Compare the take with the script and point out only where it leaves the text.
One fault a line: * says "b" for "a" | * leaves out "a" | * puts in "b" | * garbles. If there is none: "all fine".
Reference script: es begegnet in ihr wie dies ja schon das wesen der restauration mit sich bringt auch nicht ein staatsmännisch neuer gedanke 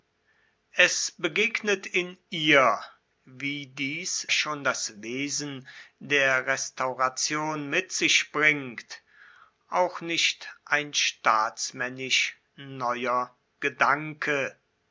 * leaves out "ja"